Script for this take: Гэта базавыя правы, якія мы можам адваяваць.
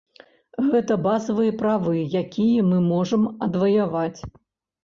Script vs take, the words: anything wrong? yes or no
no